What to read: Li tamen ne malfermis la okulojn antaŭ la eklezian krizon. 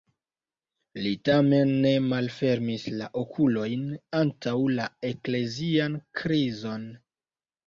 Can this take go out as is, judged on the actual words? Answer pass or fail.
pass